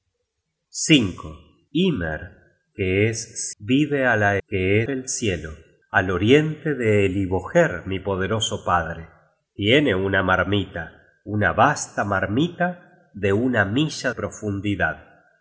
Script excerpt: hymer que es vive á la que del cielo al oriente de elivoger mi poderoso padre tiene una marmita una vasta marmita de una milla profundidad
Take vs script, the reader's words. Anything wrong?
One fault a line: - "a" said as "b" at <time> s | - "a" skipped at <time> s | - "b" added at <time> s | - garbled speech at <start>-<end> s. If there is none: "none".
none